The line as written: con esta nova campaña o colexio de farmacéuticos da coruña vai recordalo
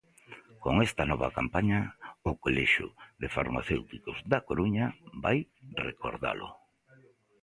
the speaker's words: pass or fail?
pass